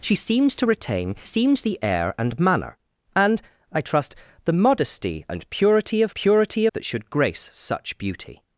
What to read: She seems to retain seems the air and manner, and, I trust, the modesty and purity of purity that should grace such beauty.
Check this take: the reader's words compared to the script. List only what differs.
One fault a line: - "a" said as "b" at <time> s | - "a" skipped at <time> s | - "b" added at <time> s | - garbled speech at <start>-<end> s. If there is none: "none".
none